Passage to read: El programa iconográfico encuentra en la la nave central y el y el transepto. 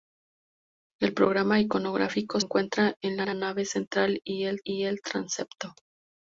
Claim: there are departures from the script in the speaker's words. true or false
false